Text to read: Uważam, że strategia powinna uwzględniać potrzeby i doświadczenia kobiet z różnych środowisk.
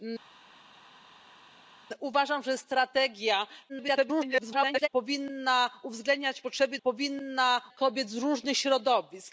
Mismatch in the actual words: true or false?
true